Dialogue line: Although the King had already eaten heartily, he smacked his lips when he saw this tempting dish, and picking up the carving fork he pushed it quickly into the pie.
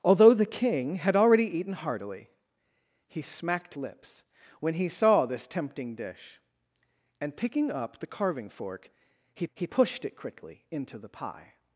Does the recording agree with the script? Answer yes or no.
no